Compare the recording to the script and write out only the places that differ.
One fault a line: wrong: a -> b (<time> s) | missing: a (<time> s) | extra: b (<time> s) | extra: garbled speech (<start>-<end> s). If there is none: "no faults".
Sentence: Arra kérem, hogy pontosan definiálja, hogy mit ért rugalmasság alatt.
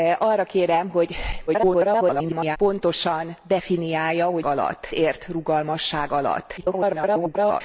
extra: garbled speech (1.5-2.6 s)
wrong: mit -> alatt (4.5 s)
extra: garbled speech (6.6-7.6 s)